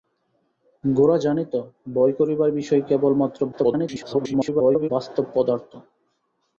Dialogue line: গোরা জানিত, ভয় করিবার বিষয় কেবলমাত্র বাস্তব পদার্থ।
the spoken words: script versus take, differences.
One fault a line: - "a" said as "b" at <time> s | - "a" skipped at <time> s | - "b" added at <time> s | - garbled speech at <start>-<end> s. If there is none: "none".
- garbled speech at 3.5-4.9 s